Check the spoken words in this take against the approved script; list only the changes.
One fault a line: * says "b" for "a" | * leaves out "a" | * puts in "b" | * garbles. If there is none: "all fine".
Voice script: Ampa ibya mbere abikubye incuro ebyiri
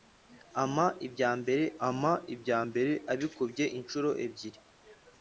* puts in "ampa ibya mbere"